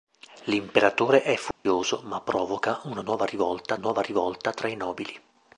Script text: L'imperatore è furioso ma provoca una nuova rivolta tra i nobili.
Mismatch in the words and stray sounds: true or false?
true